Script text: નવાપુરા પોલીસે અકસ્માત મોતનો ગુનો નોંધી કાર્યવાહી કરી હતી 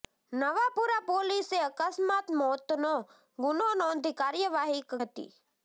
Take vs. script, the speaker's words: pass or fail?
fail